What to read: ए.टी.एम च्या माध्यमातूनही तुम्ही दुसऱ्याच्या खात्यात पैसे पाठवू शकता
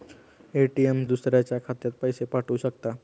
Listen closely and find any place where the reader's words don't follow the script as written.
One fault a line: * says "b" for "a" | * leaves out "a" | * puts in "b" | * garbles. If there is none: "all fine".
* leaves out "च्या माध्यमातूनही तुम्ही"